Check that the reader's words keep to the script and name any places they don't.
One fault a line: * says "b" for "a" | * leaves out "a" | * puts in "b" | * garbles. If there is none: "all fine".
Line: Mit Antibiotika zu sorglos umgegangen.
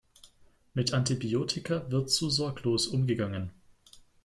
* puts in "wird"